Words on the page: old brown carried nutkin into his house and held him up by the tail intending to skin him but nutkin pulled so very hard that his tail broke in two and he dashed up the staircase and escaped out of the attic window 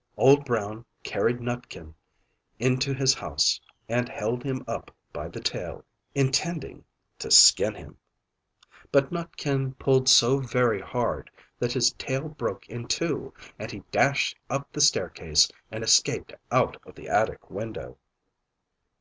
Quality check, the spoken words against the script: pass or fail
pass